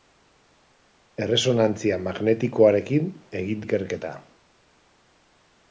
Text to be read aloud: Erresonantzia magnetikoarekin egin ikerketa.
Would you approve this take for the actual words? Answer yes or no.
yes